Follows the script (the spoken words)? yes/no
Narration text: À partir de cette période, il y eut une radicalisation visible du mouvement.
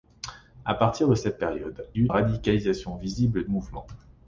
no